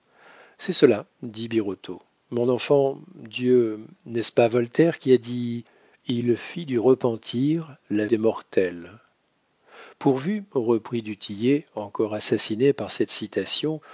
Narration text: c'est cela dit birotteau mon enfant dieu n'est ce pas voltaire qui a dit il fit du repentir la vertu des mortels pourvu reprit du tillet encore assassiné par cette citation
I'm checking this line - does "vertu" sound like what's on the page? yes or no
no